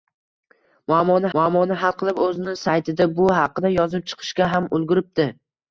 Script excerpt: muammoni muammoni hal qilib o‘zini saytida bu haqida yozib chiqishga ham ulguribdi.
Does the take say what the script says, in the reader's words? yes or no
yes